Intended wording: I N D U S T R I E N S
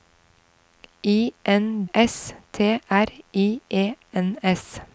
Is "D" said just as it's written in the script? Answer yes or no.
no